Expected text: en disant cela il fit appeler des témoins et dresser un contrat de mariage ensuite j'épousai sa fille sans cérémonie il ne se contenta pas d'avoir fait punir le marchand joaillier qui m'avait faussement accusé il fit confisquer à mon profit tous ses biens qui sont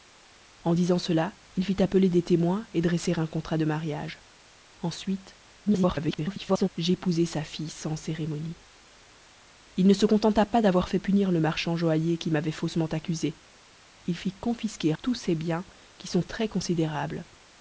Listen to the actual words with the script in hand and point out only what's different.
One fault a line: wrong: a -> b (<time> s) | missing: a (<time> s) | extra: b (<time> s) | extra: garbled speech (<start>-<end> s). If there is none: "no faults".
extra: garbled speech (5.7-6.7 s)
missing: à mon profit (14.9 s)